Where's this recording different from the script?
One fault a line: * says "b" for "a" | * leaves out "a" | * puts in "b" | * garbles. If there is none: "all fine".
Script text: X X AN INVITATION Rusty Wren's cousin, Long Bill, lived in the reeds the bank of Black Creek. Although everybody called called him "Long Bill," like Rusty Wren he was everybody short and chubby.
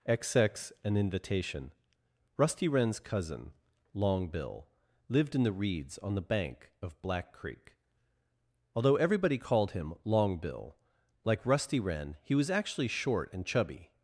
* puts in "on"
* leaves out "called"
* says "actually" for "everybody"